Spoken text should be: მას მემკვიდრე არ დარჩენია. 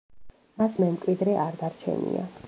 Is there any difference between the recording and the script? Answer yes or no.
no